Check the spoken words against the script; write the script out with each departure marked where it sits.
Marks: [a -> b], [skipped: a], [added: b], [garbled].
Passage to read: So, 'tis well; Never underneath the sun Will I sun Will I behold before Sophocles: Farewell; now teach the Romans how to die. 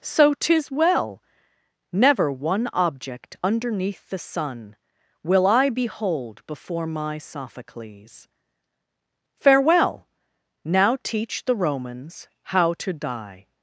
So, 'tis well; Never [added: one object] underneath the sun Will I [skipped: sun Will I] behold before [added: my] Sophocles: Farewell; now teach the Romans how to die.